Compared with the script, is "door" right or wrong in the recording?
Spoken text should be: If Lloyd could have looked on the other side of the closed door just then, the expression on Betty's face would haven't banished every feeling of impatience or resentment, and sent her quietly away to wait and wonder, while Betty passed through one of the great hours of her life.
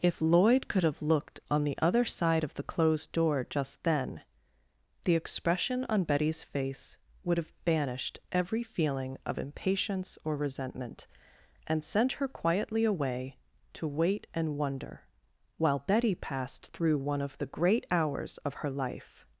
right